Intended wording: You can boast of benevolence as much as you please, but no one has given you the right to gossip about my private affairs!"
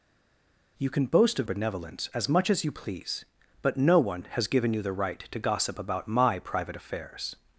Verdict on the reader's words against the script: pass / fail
pass